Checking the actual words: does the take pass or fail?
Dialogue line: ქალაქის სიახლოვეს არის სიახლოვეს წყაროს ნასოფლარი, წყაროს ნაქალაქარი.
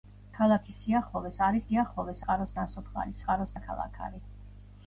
pass